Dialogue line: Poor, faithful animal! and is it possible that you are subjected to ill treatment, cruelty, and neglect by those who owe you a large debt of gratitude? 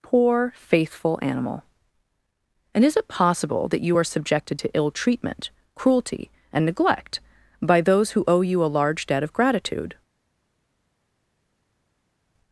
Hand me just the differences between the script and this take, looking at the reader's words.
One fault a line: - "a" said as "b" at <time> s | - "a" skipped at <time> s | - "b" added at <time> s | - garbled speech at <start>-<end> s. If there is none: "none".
none